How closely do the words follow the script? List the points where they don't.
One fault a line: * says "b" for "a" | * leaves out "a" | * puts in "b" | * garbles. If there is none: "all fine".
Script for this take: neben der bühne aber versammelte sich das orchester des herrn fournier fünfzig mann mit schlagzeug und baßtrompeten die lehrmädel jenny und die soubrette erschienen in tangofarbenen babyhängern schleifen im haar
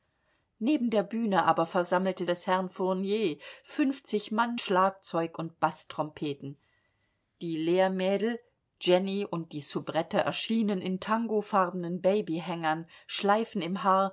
* leaves out "sich das orchester"
* leaves out "mit"